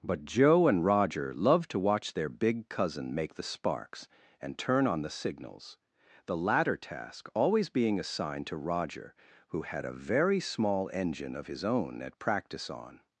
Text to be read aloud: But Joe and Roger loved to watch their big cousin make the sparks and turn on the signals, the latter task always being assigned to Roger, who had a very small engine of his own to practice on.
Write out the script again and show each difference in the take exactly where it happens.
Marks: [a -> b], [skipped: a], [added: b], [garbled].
But Joe and Roger loved to watch their big cousin make the sparks and turn on the signals, the latter task always being assigned to Roger, who had a very small engine of his own [to -> at] practice on.